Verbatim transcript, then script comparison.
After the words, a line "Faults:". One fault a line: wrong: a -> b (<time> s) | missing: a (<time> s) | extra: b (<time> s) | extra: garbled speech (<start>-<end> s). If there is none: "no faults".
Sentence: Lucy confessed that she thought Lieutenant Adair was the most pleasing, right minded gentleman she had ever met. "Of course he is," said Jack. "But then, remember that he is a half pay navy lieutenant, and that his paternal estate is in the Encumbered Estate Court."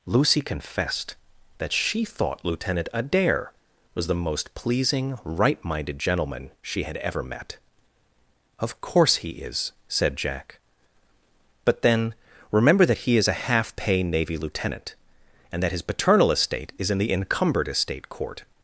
Lucy confessed that she thought Lieutenant Adair was the most pleasing, right minded gentleman she had ever met. "Of course he is," said Jack. "But then, remember that he is a half pay navy lieutenant, and that his paternal estate is in the Encumbered Estate Court."
Faults:
no faults